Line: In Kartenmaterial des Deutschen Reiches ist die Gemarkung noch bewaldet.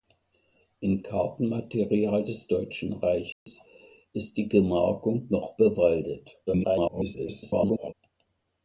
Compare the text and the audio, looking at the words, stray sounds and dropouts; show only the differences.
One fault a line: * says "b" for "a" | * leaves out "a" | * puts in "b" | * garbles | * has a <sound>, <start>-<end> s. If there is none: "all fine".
* has a dropout, 3.3-3.5 s
* garbles